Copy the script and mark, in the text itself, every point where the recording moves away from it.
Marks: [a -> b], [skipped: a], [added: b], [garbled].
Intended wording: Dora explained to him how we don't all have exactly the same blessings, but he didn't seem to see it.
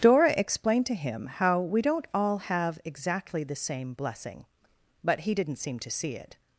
Dora explained to him how we don't all have exactly the same [blessings, -> blessing] but he didn't seem to see it.